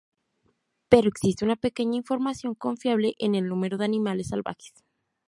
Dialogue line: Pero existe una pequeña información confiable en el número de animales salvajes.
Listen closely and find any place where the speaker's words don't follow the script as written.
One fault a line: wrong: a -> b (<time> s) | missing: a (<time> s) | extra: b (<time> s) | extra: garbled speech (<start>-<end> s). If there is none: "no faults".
no faults